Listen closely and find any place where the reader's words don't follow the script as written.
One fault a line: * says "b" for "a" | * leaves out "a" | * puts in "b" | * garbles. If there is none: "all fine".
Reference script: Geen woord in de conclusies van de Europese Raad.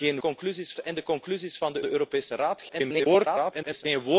* says "conclusies" for "woord"
* puts in "de"
* garbles